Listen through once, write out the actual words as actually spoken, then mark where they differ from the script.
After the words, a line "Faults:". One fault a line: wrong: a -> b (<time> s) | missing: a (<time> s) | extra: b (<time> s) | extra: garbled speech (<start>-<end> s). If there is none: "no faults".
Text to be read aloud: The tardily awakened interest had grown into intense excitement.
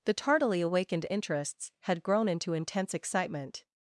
The tardily awakened interests had grown into intense excitement.
Faults:
wrong: interest -> interests (1.1 s)